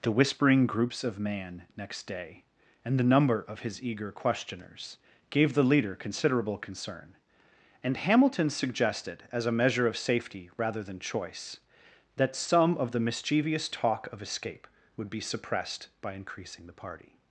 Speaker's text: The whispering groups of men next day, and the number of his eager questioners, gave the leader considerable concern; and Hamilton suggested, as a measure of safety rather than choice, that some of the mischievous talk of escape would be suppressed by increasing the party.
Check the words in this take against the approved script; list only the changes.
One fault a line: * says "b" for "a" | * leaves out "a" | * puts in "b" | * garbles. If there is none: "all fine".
* says "man" for "men"